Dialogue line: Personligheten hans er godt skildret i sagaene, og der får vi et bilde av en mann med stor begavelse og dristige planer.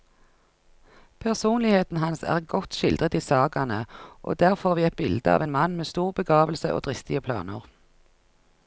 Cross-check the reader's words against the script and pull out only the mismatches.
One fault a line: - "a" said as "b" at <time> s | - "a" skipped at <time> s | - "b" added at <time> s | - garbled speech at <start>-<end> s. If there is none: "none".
none